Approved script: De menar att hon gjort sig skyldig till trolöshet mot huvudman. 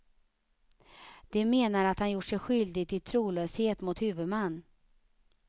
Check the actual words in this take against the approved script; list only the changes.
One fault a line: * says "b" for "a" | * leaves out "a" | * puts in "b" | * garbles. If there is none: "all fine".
* says "han" for "hon"